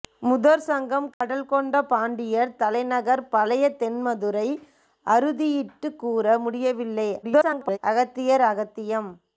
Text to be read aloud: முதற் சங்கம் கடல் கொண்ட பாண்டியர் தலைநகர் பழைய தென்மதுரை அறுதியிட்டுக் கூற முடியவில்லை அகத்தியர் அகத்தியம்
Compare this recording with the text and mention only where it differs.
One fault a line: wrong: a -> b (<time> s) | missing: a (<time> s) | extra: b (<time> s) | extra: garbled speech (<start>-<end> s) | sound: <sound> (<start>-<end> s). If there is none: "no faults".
sound: dropout (1.1-1.2 s)
extra: garbled speech (7.2-7.8 s)